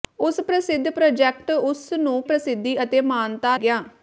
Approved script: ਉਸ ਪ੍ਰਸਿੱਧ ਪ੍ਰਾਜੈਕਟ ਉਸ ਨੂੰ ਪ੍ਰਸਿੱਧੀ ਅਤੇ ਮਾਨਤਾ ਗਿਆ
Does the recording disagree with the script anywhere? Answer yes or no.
no